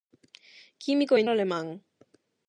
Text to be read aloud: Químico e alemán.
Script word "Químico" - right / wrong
right